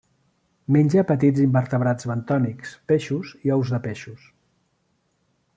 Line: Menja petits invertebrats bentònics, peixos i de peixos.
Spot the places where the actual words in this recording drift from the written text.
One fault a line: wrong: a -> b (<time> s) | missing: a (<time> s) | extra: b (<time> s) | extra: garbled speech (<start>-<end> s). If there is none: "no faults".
extra: ous (3.6 s)